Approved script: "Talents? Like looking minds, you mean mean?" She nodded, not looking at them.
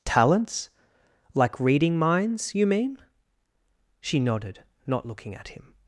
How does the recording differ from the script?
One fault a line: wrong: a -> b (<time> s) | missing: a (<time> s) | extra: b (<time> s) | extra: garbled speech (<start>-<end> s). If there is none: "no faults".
wrong: looking -> reading (1.6 s)
missing: mean (3.0 s)
wrong: them -> him (5.5 s)